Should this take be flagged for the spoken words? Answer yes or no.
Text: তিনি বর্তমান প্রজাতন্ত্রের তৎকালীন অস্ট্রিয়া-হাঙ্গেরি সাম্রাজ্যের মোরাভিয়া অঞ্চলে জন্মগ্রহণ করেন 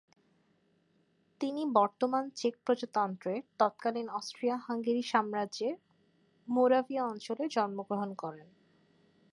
yes